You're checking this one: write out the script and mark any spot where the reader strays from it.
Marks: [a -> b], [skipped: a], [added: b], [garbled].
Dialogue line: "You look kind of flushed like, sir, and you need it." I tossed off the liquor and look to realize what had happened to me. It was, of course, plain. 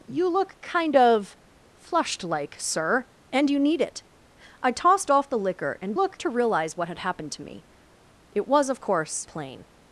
"You look kind of flushed like, sir, and you need it." I tossed off the liquor and look to realize what had happened to me. It was, of course, plain.